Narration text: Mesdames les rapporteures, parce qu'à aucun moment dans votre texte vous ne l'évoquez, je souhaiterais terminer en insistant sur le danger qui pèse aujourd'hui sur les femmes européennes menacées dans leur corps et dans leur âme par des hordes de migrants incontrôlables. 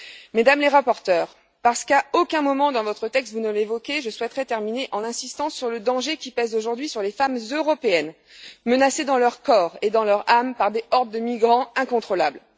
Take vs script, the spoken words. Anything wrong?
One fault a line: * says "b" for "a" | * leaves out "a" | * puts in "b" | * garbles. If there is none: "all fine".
all fine